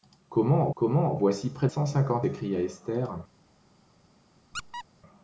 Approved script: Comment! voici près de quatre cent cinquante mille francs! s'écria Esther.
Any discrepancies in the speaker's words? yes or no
yes